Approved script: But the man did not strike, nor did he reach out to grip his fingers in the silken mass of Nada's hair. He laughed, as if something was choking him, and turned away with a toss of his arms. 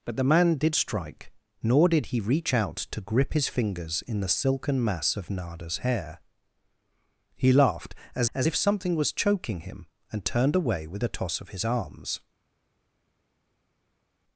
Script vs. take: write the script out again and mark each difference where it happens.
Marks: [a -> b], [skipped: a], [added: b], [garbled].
But the man did [skipped: not] strike, nor did he reach out to grip his fingers in the silken mass of Nada's hair. He laughed, as [added: as] if something was choking him, and turned away with a toss of his arms.